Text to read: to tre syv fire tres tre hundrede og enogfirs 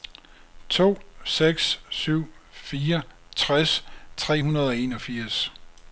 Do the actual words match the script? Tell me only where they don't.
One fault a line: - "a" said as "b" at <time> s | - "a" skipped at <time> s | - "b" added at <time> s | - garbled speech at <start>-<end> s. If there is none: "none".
- "tre" said as "seks" at 1.2 s